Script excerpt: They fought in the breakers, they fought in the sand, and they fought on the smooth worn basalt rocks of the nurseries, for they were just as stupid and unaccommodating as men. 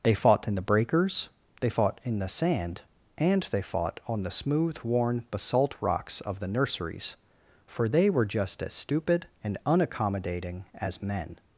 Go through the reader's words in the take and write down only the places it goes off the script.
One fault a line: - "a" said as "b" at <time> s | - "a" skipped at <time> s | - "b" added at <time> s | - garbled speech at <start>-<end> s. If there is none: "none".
none